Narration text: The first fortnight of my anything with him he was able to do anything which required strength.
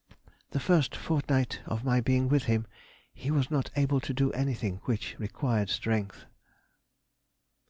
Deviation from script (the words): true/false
true